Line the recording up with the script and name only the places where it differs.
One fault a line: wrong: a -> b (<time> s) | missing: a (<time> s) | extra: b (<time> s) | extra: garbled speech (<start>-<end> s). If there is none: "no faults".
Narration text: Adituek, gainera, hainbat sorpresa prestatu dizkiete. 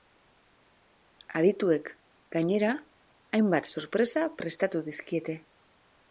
no faults